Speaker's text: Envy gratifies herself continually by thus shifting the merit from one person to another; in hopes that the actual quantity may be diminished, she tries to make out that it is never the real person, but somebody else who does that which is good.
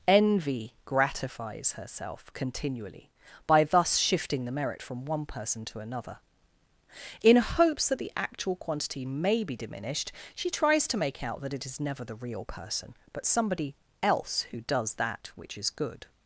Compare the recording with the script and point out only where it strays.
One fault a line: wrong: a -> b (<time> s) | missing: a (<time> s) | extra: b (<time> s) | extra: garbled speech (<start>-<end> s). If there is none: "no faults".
no faults